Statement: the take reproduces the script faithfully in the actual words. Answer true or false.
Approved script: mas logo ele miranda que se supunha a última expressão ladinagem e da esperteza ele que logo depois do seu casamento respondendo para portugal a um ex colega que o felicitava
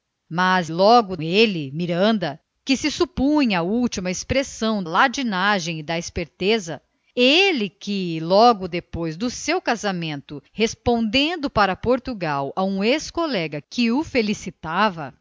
true